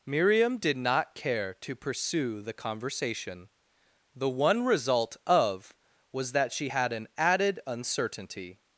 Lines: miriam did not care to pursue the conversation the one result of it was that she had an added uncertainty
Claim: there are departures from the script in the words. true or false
true